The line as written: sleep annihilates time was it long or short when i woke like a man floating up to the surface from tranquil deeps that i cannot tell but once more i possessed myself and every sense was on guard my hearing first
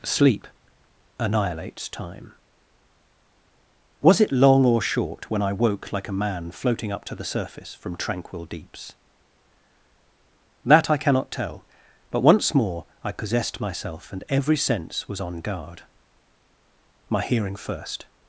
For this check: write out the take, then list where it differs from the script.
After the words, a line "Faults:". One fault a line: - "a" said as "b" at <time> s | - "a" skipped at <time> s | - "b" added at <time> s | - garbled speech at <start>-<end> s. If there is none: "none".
sleep annihilates time was it long or short when i woke like a man floating up to the surface from tranquil deeps that i cannot tell but once more i possessed myself and every sense was on guard my hearing first
Faults:
none